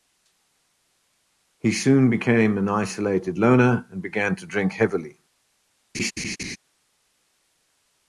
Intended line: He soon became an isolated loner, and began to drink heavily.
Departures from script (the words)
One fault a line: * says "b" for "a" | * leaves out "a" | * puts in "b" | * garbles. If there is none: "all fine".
all fine